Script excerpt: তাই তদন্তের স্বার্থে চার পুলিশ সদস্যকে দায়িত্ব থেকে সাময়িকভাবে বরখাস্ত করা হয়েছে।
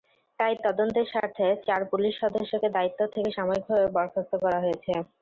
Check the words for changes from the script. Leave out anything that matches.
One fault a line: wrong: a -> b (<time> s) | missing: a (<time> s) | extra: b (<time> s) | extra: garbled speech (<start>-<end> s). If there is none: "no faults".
no faults